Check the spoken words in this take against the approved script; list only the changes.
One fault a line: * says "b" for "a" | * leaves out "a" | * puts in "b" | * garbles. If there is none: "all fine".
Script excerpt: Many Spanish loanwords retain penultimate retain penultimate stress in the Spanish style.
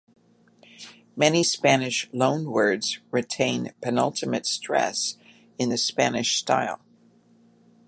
* leaves out "retain penultimate"